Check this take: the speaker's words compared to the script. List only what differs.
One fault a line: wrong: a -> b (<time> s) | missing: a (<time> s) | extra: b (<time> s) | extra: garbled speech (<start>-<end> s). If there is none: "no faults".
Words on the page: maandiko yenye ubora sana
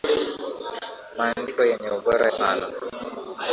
no faults